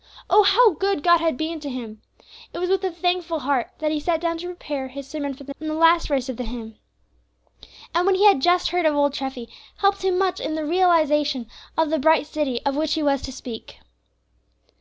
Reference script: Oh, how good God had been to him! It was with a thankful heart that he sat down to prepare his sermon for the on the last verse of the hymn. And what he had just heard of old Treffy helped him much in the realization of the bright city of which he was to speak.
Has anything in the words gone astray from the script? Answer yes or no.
no